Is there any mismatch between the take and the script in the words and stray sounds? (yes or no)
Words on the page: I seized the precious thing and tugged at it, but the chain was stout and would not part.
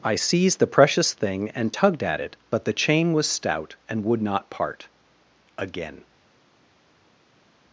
yes